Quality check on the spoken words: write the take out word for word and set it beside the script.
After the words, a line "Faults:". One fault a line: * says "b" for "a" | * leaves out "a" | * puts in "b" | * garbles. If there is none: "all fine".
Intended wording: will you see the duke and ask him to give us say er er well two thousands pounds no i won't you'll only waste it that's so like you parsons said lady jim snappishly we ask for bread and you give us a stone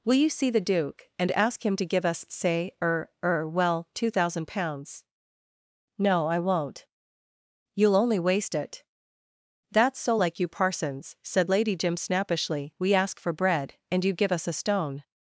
will you see the duke and ask him to give us say er er well two thousand pounds no i won't you'll only waste it that's so like you parsons said lady jim snappishly we ask for bread and you give us a stone
Faults:
* says "thousand" for "thousands"